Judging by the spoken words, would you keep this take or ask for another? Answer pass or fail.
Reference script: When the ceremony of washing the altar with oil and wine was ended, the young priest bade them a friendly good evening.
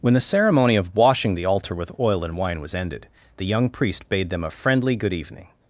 pass